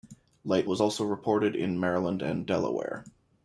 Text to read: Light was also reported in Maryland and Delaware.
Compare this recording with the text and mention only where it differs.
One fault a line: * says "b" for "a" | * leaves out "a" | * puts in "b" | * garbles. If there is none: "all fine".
all fine